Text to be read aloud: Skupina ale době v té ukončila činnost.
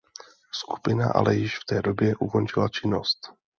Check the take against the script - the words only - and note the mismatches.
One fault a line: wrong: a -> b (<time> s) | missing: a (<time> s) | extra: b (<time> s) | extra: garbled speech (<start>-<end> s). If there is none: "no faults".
wrong: době -> již (1.4 s)
extra: době (1.8 s)